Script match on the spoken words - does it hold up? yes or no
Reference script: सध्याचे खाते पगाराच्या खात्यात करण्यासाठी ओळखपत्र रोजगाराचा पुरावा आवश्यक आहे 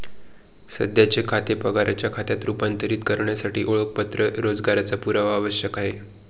no